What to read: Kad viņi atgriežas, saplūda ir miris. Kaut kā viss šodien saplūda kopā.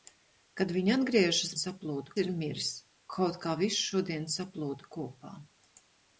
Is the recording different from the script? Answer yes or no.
no